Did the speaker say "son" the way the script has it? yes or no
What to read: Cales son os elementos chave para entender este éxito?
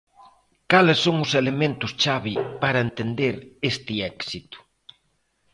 yes